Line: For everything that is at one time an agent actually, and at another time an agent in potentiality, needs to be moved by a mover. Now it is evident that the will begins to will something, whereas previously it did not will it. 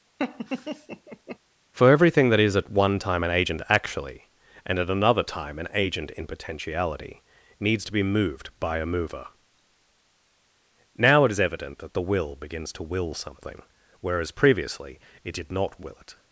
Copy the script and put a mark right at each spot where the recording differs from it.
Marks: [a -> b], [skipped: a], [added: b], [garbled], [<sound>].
[laugh] For everything that is at one time an agent actually, and at another time an agent in potentiality, needs to be moved by a mover. Now it is evident that the will begins to will something, whereas previously it did not will it.